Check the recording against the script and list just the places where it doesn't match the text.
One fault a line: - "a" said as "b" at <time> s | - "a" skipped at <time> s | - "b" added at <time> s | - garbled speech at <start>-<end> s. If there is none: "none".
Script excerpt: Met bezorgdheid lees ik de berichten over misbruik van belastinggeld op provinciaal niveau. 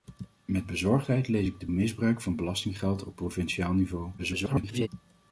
- "berichten over" skipped at 1.7 s
- garbled speech at 4.2-4.9 s